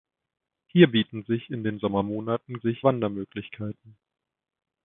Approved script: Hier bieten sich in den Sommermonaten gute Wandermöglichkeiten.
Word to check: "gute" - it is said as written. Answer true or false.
false